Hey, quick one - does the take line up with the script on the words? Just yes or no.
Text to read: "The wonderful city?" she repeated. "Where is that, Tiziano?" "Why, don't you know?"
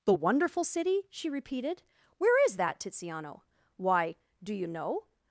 no